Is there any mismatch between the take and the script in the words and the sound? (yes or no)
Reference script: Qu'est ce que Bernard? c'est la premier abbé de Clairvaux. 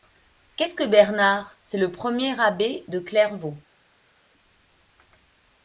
yes